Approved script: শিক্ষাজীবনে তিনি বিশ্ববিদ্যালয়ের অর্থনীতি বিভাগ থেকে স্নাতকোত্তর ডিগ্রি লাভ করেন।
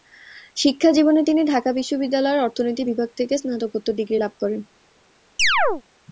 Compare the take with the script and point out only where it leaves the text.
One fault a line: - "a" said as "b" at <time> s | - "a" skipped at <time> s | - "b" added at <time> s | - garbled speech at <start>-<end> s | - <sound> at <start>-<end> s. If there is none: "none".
- "ঢাকা" added at 1.4 s
- chirp at 5.4-5.8 s